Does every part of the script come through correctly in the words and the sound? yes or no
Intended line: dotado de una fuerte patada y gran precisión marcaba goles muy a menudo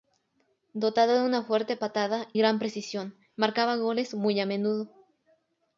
no